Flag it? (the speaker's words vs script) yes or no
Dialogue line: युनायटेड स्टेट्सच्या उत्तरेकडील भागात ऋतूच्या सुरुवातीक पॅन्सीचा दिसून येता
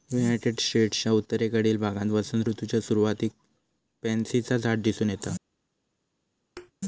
yes